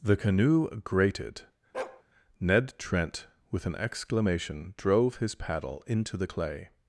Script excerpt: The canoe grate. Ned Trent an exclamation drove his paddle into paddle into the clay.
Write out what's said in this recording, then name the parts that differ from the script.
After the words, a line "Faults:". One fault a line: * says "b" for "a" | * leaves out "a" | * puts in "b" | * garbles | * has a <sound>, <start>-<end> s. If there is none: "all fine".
The canoe grated. Ned Trent with an exclamation drove his paddle into the clay.
Faults:
* says "grated" for "grate"
* has a bark, 1.7-2.0 s
* puts in "with"
* leaves out "paddle into"